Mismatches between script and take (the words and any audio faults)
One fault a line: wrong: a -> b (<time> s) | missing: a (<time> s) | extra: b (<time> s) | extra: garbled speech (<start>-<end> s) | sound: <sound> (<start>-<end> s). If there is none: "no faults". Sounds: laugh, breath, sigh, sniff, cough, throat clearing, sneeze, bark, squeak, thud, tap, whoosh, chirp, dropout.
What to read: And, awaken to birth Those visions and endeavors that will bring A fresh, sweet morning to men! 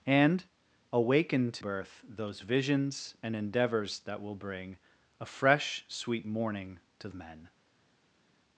no faults